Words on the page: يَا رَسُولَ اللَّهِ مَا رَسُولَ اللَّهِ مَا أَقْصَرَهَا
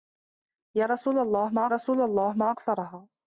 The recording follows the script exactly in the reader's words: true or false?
true